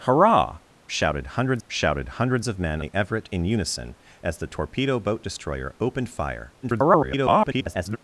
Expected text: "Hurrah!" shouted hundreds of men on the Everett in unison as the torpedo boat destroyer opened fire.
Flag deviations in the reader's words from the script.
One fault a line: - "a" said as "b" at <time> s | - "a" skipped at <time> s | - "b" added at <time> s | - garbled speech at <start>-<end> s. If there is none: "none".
- "shouted hundreds" added at 1.7 s
- "on" skipped at 2.8 s
- garbled speech at 6.6-8.0 s